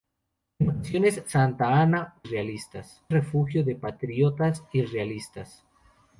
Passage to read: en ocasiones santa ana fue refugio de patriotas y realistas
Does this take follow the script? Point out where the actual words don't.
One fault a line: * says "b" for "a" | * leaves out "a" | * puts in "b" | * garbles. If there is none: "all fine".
* says "realistas" for "fue"